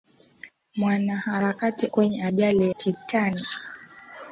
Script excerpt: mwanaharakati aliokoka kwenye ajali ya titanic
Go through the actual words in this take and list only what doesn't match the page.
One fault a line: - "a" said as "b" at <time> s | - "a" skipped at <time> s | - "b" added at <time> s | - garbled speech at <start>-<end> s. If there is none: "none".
- "aliokoka" skipped at 1.9 s
- "ya" skipped at 2.7 s